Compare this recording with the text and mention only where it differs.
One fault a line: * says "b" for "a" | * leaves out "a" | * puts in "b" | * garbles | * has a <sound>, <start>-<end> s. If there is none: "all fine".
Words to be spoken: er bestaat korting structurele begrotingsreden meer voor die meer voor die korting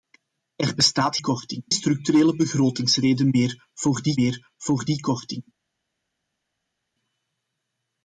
all fine